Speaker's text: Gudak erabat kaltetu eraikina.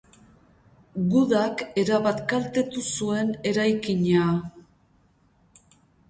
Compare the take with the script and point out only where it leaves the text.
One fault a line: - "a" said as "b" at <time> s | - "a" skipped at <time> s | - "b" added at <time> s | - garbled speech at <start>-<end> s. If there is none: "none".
- "zuen" added at 3.0 s